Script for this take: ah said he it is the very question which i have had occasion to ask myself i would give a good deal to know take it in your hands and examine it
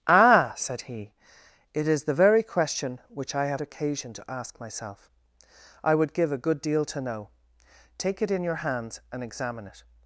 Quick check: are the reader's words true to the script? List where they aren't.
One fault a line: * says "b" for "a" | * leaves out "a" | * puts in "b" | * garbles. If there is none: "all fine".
* leaves out "had"